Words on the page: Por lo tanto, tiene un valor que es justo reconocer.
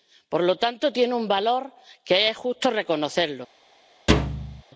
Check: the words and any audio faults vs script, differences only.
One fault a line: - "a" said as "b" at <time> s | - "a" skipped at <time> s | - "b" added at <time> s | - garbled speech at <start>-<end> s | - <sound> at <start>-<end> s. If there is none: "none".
- thud at 4.1-4.6 s